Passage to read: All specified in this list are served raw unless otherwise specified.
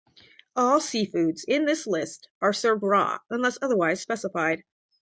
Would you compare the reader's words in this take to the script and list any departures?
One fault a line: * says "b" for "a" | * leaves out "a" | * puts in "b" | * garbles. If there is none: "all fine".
* says "seafoods" for "specified"